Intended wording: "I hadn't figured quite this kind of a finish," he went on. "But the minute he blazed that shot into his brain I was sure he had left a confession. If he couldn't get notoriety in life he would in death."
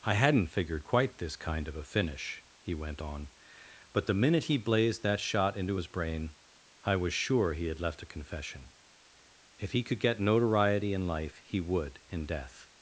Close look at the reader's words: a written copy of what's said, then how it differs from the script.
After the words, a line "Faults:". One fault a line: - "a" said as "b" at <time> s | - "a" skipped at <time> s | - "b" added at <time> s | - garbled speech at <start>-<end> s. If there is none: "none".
"I hadn't figured quite this kind of a finish," he went on. "But the minute he blazed that shot into his brain I was sure he had left a confession. If he could get notoriety in life he would in death."
Faults:
- "couldn't" said as "could" at 9.8 s